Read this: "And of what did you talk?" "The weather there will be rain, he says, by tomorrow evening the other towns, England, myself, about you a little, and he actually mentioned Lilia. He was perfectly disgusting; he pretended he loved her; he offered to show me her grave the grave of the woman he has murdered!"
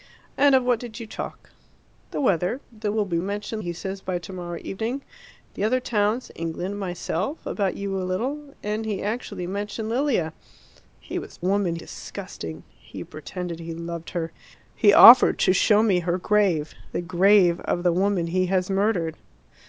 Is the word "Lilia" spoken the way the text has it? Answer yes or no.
yes